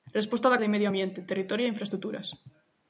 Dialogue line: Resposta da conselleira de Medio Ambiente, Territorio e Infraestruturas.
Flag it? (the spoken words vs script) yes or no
yes